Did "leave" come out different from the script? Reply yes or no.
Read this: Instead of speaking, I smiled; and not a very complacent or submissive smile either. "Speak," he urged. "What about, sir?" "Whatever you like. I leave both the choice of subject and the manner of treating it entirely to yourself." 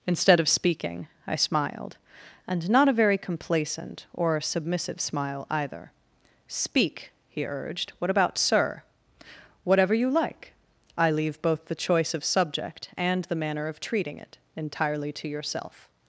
no